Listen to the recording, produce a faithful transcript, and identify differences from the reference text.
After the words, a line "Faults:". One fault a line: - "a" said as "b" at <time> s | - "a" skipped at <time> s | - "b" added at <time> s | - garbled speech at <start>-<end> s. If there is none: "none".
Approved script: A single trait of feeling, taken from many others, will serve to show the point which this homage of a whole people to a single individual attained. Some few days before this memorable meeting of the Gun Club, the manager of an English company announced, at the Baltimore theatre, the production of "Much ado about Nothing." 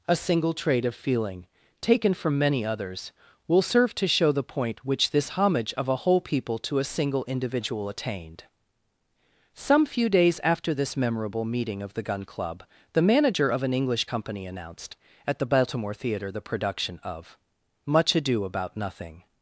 A single trait of feeling, taken from many others, will serve to show the point which this homage of a whole people to a single individual attained. Some few days after this memorable meeting of the Gun Club, the manager of an English company announced, at the Baltimore theatre, the production of "Much ado about Nothing."
Faults:
- "before" said as "after" at 10.4 s